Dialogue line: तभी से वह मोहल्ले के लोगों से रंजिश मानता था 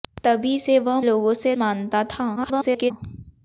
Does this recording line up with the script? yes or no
no